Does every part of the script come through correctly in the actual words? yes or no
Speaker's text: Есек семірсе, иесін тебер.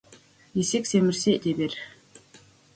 no